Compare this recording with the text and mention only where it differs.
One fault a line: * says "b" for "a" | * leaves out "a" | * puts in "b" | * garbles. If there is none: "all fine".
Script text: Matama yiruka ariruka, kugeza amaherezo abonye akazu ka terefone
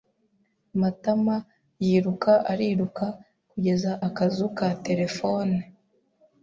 * leaves out "amaherezo abonye"